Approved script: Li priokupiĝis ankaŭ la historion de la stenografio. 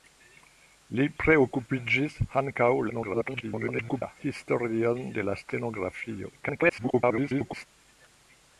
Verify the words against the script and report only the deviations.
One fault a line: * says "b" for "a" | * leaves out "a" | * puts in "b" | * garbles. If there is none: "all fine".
* garbles
* garbles